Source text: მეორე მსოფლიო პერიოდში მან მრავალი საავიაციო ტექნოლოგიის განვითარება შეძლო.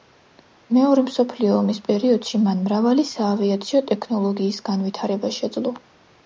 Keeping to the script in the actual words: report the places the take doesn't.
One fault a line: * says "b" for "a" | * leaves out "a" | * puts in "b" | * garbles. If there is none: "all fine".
* puts in "ომის"